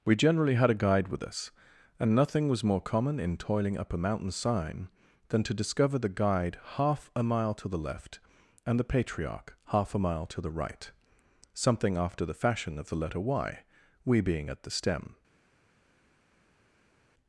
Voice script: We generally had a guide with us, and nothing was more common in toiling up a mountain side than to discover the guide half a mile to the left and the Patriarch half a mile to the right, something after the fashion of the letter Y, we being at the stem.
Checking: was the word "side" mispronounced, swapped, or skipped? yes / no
yes